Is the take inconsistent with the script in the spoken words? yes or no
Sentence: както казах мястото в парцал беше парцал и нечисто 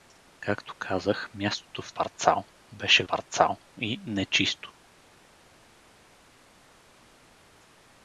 no